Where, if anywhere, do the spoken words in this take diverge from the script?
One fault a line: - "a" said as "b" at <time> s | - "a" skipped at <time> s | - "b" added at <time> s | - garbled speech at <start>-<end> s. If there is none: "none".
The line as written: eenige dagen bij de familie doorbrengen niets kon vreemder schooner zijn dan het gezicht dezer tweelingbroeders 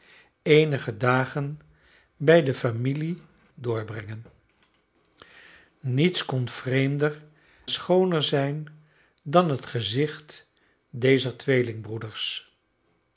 none